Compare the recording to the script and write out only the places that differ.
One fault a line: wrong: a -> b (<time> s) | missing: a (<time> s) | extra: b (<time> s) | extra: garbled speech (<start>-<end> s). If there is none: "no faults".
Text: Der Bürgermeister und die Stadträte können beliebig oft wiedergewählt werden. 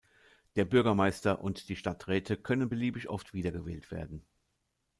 no faults